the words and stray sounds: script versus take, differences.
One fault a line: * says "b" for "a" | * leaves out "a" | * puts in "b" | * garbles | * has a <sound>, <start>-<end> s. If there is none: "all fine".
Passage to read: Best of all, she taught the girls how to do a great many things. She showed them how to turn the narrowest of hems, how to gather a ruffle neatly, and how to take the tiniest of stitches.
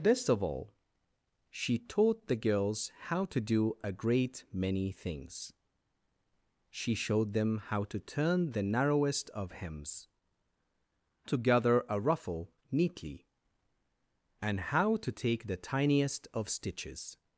* leaves out "how"